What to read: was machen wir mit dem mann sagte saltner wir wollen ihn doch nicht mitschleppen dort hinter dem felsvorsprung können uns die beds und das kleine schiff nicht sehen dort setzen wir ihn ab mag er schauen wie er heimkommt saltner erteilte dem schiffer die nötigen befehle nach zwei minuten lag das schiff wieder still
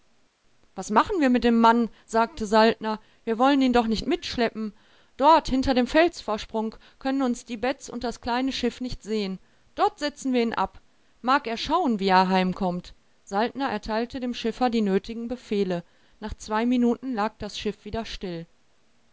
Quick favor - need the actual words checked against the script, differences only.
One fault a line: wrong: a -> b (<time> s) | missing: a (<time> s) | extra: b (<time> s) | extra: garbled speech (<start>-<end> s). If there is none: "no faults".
no faults